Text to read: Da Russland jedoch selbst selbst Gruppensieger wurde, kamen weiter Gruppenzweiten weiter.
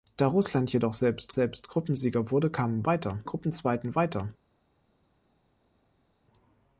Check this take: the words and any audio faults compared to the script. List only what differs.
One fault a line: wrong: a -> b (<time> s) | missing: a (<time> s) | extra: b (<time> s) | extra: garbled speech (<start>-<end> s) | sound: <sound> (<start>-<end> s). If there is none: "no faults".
no faults